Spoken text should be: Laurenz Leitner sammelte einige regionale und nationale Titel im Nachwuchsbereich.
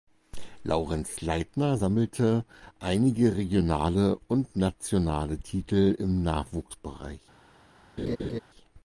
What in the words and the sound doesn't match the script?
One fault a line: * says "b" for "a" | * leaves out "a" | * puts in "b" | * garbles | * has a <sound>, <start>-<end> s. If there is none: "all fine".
* has a laugh, 8.0-8.4 s